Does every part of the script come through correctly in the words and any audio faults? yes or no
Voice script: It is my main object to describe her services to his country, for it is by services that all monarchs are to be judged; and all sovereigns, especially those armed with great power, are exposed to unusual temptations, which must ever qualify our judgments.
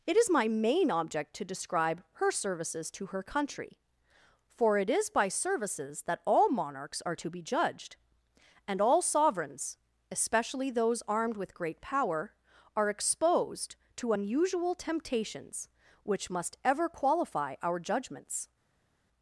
no